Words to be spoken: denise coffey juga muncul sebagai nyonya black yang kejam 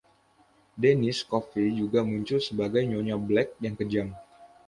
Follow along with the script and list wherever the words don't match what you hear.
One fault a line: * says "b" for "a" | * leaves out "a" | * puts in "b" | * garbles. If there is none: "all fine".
all fine